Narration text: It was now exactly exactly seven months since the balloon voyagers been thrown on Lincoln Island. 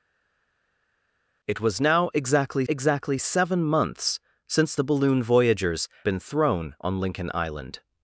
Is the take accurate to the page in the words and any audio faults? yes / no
yes